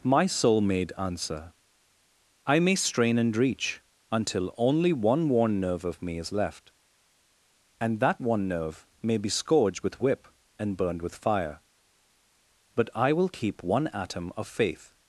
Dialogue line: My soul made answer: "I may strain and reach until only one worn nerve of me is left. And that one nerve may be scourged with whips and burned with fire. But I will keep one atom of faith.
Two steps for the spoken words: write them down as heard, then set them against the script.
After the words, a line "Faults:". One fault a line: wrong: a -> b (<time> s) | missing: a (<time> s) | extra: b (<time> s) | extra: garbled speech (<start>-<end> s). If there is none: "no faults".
My soul made answer: "I may strain and reach until only one worn nerve of me is left. And that one nerve may be scourged with whip and burned with fire. But I will keep one atom of faith.
Faults:
wrong: whips -> whip (10.0 s)